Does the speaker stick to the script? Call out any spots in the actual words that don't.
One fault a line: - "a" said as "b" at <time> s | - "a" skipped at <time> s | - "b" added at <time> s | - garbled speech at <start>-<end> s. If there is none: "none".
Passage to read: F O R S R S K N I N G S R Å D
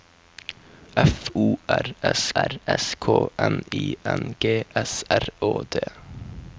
none